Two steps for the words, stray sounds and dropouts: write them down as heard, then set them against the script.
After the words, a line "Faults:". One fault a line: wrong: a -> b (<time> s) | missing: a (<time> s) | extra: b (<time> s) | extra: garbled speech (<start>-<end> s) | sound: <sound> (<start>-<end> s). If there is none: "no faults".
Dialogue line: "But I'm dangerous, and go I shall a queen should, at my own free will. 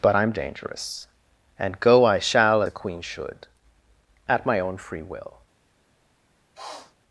"But I'm dangerous, and go I shall a queen should, at my own free will.
Faults:
sound: sniff (6.6-7.0 s)